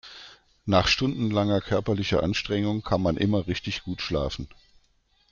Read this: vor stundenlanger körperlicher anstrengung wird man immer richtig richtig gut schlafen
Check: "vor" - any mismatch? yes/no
yes